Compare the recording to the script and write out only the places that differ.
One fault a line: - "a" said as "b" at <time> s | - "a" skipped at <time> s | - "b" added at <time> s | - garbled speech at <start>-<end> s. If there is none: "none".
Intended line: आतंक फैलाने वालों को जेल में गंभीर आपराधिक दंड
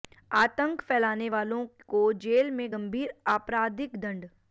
none